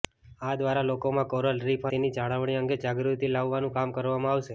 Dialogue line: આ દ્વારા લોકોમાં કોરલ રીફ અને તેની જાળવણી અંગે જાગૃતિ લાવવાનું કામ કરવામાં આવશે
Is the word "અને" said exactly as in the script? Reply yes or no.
no